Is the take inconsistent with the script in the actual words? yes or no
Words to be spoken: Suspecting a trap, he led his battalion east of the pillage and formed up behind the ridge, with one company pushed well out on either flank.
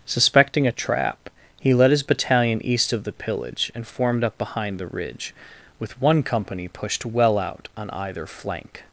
no